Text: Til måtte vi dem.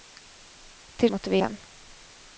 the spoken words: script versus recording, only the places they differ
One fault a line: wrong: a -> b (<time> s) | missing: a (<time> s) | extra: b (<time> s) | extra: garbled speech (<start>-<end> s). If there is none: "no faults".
no faults